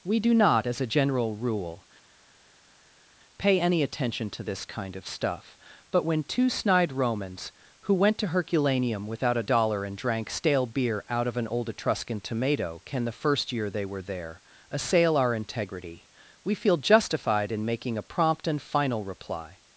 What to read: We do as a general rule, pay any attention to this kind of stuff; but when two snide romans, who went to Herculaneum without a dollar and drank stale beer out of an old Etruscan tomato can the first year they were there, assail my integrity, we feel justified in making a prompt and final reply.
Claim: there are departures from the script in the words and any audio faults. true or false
true